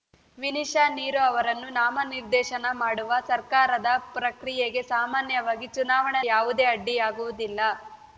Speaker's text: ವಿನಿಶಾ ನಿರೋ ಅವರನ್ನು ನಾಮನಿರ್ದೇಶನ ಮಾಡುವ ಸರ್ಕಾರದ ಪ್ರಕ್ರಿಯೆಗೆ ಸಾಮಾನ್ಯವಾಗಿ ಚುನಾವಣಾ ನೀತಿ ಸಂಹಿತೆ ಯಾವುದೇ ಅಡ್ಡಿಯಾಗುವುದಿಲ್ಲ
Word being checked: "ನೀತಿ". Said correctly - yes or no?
no